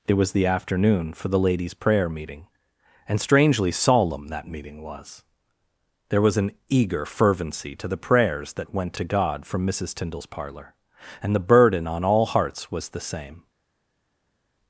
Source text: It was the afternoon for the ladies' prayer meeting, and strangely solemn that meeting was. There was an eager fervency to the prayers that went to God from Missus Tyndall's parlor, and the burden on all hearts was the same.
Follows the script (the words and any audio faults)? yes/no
yes